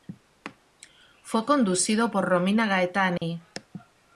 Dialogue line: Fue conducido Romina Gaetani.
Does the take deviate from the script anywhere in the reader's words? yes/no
yes